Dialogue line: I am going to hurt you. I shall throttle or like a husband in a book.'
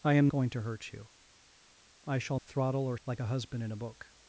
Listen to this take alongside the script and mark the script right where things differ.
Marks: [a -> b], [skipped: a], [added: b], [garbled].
I am going to hurt you. I shall throttle or like a husband in a book.'